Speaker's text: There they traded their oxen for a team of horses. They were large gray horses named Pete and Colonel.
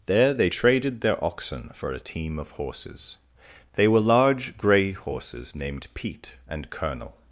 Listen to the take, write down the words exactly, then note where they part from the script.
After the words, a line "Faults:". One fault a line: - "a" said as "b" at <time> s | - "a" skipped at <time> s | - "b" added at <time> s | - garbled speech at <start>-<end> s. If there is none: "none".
There they traded their oxen for a team of horses. They were large gray horses named Pete and Colonel.
Faults:
none